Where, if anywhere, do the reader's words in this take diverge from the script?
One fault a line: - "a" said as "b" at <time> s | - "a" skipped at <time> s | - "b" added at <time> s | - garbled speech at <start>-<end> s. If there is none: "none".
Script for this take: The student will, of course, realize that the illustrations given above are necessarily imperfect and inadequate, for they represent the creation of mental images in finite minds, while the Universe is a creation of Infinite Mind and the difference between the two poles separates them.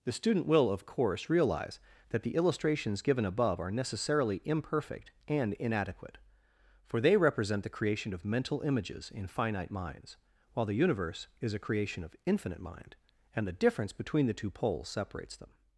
none